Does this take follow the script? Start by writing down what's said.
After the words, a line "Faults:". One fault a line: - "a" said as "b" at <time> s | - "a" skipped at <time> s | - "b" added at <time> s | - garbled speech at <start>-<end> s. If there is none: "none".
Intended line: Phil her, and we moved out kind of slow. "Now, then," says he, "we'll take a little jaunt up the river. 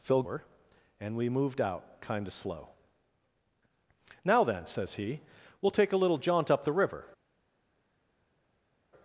Phil her, and we moved out kind of slow. "Now, then," says he, "we'll take a little jaunt up the river.
Faults:
none